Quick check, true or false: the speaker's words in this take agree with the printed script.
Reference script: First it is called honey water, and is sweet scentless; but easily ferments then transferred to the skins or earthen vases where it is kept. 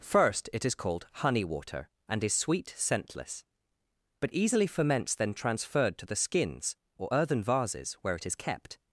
true